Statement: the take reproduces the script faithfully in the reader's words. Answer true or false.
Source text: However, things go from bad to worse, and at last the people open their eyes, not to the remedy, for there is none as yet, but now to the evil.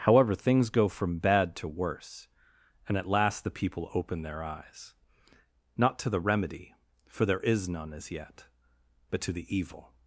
false